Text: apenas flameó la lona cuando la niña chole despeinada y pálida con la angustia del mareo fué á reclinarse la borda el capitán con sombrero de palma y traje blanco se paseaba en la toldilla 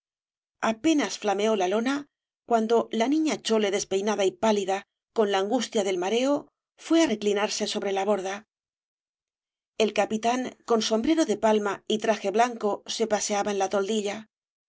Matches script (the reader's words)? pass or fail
fail